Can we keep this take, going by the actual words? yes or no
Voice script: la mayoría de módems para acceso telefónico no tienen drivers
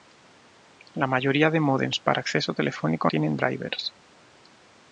no